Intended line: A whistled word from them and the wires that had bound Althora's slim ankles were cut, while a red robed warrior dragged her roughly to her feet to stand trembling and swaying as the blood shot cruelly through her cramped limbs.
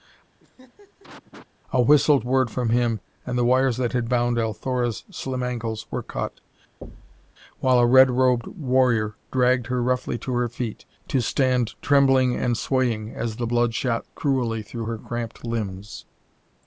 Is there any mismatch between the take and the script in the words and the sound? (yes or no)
yes